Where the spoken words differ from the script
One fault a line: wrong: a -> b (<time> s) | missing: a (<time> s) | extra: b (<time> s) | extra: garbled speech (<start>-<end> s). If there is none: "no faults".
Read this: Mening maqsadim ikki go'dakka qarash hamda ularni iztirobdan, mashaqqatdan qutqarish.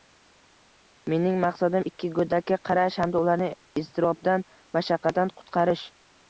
no faults